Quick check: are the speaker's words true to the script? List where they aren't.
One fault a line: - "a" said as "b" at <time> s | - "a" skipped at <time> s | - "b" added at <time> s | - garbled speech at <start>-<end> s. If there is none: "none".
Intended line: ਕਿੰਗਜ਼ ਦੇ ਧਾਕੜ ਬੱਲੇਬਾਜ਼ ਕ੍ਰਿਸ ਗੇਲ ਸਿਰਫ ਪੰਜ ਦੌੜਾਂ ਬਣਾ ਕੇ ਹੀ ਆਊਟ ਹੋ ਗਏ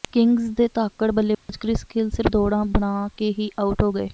- "ਪੰਜ" skipped at 2.3 s